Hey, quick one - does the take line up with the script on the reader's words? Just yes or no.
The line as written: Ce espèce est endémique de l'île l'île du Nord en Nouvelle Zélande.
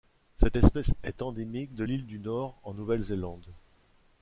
no